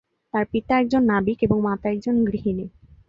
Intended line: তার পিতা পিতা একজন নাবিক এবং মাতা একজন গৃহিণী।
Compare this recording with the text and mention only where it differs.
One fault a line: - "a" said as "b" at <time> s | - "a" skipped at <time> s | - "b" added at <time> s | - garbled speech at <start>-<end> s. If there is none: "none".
- "পিতা" skipped at 0.7 s